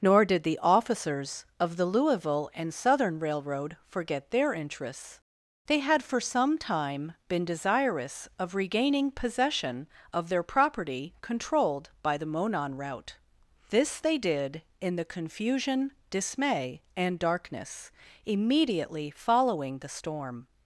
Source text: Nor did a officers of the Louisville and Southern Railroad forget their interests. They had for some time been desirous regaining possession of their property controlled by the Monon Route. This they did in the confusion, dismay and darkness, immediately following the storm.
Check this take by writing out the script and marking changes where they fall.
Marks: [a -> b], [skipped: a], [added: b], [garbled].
Nor did [a -> the] officers of the Louisville and Southern Railroad forget their interests. They had for some time been desirous [added: of] regaining possession of their property controlled by the Monon Route. This they did in the confusion, dismay and darkness, immediately following the storm.